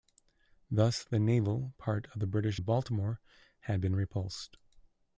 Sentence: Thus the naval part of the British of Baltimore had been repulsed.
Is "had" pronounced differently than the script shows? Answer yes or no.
no